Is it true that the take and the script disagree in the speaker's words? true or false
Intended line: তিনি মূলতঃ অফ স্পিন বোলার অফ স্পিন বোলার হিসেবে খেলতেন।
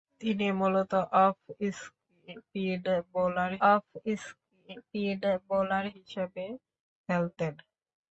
false